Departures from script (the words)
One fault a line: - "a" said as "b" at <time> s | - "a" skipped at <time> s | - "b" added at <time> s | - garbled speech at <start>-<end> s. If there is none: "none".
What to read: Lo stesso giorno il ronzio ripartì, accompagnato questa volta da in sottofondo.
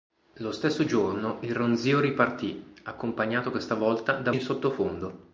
none